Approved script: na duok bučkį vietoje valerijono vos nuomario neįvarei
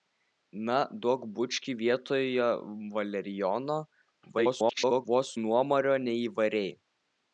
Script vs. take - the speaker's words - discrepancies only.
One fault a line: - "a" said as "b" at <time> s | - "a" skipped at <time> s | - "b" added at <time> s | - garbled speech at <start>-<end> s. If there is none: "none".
- garbled speech at 4.3-5.1 s